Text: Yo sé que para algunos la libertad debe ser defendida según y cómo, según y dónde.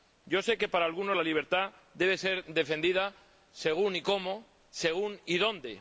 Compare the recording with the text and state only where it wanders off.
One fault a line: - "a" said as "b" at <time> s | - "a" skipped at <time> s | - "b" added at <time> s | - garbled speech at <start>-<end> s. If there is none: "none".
none